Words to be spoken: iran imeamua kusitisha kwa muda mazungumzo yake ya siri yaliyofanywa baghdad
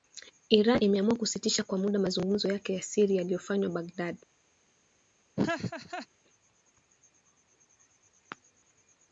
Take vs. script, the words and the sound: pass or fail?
fail